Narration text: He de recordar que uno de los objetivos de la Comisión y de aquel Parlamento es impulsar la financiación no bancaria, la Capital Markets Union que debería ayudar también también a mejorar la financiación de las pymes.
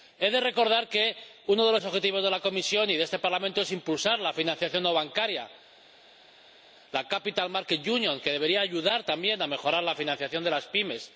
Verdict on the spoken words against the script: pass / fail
fail